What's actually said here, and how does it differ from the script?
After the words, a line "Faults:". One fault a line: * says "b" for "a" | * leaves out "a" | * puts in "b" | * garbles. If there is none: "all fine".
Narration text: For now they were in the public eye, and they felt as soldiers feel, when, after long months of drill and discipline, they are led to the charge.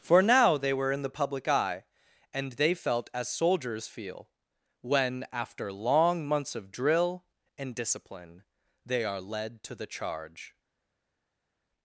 For now they were in the public eye, and they felt as soldiers feel, when, after long months of drill and discipline, they are led to the charge.
Faults:
all fine